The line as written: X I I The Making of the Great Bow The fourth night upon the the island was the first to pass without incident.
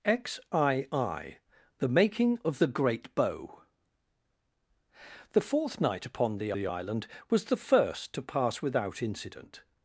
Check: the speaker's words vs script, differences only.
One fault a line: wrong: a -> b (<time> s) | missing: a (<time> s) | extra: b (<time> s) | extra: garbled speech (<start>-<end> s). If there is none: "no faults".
no faults